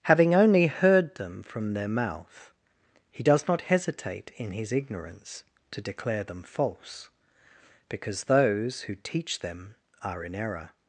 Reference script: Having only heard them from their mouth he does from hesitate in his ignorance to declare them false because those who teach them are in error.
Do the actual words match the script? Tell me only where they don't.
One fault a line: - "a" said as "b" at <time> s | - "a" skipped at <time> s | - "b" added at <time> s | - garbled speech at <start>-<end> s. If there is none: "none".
- "from" said as "not" at 3.5 s